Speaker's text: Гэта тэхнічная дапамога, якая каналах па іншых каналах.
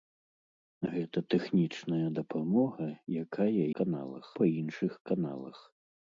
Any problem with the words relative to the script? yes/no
no